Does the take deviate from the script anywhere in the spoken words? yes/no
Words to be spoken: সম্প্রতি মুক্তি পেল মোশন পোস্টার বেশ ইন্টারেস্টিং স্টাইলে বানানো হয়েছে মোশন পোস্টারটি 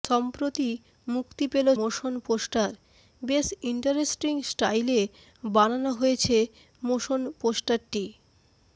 no